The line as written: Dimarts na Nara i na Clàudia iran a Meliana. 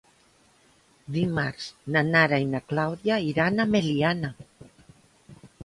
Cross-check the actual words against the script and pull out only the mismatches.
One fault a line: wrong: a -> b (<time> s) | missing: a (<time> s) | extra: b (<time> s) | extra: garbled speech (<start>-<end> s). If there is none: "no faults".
no faults